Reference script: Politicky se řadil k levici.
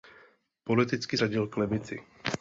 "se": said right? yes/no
no